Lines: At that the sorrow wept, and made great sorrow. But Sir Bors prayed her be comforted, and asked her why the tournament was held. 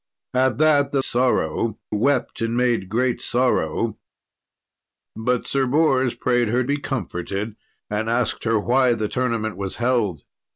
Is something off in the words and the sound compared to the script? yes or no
no